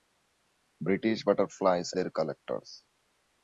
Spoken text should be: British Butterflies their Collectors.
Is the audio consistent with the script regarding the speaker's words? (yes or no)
yes